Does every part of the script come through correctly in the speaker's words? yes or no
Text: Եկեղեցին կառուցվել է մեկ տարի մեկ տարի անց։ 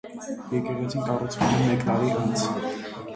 no